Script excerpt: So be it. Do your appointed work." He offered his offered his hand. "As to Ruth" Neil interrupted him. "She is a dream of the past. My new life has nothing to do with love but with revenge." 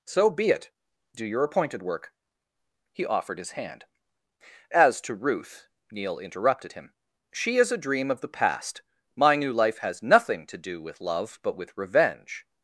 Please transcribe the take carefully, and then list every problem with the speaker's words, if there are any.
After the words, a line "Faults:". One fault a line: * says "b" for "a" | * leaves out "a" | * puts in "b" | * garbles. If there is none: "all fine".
So be it. Do your appointed work." He offered his hand. "As to Ruth" Neil interrupted him. "She is a dream of the past. My new life has nothing to do with love but with revenge."
Faults:
* leaves out "offered his"